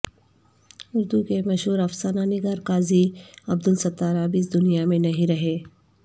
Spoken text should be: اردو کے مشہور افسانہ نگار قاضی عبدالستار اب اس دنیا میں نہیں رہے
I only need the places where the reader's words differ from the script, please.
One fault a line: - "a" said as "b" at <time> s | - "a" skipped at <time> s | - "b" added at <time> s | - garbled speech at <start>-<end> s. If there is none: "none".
none